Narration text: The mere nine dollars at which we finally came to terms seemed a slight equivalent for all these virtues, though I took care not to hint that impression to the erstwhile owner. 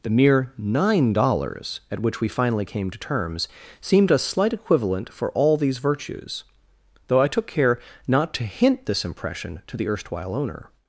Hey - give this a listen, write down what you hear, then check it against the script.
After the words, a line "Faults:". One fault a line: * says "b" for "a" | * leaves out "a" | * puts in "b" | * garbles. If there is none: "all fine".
The mere nine dollars at which we finally came to terms seemed a slight equivalent for all these virtues, though I took care not to hint this impression to the erstwhile owner.
Faults:
* says "this" for "that"